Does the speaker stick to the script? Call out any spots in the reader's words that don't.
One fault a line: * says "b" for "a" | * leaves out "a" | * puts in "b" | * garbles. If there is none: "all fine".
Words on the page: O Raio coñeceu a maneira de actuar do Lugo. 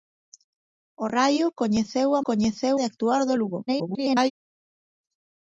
* says "coñeceu" for "maneira"
* garbles